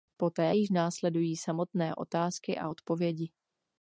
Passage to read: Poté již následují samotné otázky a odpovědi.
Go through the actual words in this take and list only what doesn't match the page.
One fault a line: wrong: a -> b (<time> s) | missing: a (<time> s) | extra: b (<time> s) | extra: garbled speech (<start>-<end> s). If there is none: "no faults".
no faults